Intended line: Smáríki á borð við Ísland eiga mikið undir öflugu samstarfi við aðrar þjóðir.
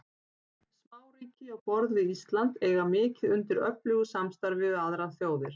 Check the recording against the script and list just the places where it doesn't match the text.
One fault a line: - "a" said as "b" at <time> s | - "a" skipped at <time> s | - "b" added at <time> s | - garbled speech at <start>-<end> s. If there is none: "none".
none